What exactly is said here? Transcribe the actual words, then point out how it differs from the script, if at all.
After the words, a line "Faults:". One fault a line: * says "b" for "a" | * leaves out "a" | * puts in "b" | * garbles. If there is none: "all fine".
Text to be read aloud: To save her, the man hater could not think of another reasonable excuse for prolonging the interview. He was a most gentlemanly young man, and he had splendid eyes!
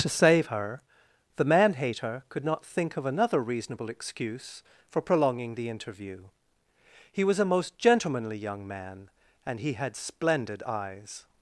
To save her, the man hater could not think of another reasonable excuse for prolonging the interview. He was a most gentlemanly young man, and he had splendid eyes!
Faults:
all fine